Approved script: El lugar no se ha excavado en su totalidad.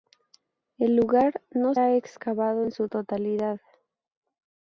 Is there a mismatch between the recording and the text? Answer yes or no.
yes